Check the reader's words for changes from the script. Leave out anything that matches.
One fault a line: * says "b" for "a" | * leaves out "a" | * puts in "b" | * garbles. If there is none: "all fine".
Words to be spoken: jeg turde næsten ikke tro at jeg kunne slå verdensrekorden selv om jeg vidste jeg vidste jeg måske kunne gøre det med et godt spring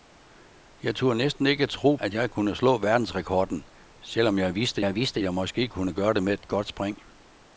all fine